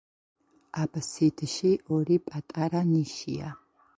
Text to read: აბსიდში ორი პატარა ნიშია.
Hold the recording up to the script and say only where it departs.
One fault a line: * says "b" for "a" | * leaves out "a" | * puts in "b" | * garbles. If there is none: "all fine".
all fine